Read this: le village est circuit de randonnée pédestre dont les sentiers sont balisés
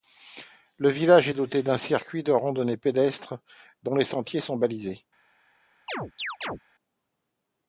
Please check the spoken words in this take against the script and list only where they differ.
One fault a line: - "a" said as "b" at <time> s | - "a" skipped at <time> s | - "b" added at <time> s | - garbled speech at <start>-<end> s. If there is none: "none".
- "doté d'un" added at 1.3 s